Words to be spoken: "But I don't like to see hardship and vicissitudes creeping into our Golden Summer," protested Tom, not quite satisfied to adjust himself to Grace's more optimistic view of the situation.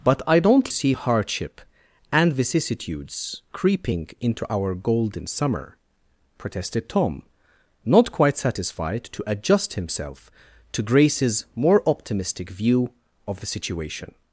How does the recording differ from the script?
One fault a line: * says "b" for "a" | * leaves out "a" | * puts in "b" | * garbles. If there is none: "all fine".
* leaves out "like to"